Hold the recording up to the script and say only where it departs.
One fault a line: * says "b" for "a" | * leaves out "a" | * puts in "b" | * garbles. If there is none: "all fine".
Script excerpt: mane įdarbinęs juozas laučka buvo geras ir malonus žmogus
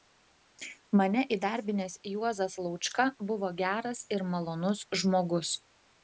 all fine